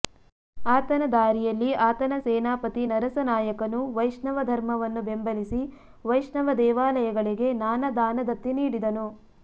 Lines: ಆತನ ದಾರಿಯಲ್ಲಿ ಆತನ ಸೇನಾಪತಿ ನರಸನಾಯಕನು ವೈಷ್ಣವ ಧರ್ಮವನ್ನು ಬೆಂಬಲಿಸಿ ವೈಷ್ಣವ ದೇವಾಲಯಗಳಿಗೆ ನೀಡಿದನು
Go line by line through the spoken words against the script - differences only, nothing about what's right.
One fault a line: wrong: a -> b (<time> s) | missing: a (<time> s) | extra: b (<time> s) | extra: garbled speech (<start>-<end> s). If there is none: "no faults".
extra: ನಾನಾ ದಾನದತ್ತಿ (7.6 s)